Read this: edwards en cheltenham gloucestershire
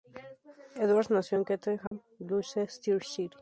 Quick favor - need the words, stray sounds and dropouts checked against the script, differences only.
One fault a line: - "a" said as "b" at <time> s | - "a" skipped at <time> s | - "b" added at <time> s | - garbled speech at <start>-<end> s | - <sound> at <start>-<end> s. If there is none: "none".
- "nació" added at 1.1 s
- dropout at 1.9-1.9 s